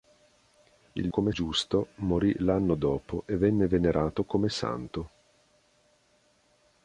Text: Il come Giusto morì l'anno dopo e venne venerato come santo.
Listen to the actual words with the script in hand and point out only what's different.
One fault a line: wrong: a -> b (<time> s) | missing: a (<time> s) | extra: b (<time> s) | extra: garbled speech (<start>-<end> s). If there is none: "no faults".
no faults